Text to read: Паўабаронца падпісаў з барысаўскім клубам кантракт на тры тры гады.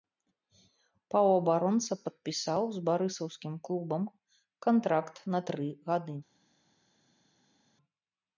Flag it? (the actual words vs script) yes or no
yes